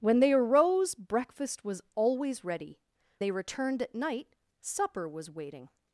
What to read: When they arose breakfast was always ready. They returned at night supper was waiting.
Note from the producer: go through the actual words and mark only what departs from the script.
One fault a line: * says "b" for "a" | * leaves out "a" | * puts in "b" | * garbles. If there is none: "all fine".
all fine